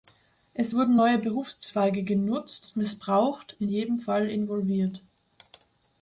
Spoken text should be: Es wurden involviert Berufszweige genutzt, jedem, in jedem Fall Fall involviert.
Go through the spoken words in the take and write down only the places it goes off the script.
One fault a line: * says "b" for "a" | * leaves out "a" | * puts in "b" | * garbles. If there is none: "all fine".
* says "neue" for "involviert"
* says "missbraucht" for "jedem"
* leaves out "Fall"